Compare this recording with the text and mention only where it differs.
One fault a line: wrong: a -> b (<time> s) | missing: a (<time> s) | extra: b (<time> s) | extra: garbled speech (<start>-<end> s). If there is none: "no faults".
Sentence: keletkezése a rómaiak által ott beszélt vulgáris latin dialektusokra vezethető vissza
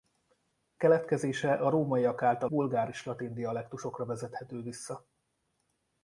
missing: ott beszélt (2.5 s)